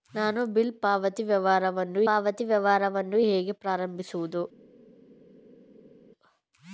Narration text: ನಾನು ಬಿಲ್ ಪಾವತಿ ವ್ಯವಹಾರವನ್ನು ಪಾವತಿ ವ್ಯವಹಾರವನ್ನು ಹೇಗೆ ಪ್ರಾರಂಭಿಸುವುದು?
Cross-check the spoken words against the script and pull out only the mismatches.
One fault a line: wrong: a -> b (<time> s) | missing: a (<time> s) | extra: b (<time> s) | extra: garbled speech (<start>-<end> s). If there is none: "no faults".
no faults